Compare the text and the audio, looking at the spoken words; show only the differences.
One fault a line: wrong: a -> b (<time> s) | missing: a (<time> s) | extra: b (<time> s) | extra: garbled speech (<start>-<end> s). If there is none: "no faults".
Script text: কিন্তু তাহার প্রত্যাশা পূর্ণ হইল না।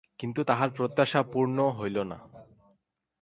no faults